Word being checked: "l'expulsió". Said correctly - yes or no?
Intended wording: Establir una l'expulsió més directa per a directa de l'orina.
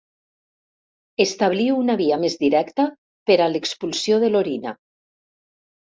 no